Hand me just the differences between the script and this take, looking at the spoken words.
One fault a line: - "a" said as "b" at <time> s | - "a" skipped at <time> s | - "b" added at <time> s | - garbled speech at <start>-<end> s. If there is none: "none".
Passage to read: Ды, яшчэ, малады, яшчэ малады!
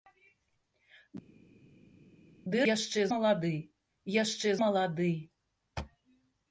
none